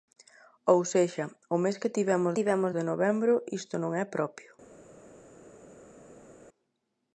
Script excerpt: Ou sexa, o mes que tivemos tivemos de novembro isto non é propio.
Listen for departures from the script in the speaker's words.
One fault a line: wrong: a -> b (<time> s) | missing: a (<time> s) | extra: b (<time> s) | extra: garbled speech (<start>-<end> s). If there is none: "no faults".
no faults